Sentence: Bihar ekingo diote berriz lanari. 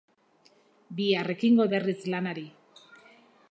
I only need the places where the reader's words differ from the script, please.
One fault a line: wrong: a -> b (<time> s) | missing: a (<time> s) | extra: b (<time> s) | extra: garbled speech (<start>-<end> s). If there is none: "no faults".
missing: diote (1.7 s)